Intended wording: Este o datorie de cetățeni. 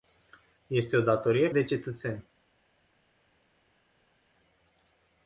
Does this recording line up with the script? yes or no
yes